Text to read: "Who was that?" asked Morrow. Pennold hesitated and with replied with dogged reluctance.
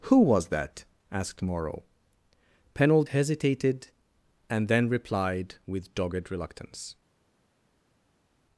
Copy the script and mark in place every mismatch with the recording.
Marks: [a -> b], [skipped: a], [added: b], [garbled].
"Who was that?" asked Morrow. Pennold hesitated and [with -> then] replied with dogged reluctance.